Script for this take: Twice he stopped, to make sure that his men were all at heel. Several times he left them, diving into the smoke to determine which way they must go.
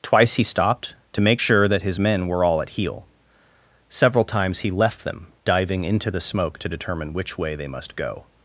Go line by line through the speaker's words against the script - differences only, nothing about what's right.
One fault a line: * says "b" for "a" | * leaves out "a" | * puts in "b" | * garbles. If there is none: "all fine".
all fine